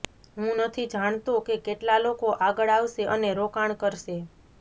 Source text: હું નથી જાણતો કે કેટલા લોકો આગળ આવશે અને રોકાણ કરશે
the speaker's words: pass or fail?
pass